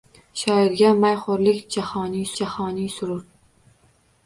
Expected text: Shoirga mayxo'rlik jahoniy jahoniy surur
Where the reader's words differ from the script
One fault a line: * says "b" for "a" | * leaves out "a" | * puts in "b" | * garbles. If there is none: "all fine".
all fine